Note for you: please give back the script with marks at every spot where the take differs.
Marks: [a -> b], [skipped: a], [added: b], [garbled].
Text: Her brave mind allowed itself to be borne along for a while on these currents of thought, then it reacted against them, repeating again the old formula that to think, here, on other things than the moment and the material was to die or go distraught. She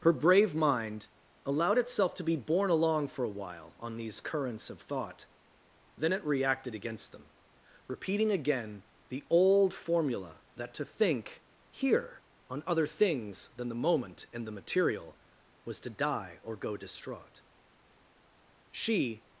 Her brave mind allowed itself to be borne along for a while on these currents of thought, then it reacted against them, repeating again the old formula that to think, here, on other things than the moment and the material was to die or go distraught. She